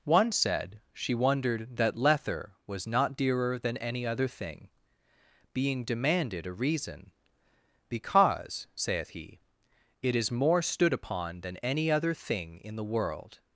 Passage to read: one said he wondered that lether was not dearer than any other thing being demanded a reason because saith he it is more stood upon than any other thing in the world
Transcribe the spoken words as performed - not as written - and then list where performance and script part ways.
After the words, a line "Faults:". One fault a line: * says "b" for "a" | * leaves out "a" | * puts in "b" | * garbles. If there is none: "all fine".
one said she wondered that lether was not dearer than any other thing being demanded a reason because saith he it is more stood upon than any other thing in the world
Faults:
* says "she" for "he"